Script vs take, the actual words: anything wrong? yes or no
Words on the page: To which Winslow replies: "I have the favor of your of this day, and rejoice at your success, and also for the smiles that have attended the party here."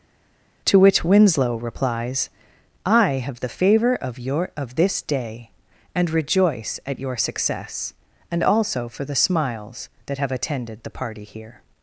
no